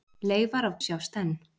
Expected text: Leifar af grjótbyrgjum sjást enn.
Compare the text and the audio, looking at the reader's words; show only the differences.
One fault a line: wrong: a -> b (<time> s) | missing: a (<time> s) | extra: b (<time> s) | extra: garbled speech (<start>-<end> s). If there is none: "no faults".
missing: grjótbyrgjum (0.8 s)